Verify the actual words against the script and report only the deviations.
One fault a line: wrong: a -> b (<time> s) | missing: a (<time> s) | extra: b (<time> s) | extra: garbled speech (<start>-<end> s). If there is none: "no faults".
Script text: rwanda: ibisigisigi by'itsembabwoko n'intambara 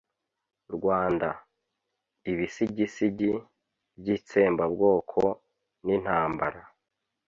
no faults